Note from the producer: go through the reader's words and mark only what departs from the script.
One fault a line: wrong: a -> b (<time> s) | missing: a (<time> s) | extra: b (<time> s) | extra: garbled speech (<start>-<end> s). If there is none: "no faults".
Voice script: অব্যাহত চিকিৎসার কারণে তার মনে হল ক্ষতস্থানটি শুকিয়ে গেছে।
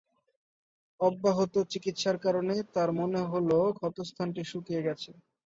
no faults